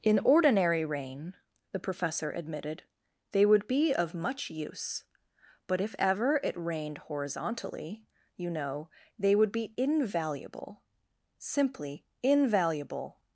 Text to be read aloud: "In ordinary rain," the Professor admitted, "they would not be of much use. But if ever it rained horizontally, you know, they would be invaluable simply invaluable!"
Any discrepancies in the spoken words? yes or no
yes